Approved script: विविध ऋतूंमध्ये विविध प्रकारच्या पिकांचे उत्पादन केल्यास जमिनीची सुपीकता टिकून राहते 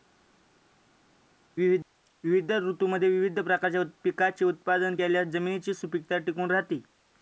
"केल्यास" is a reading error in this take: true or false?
false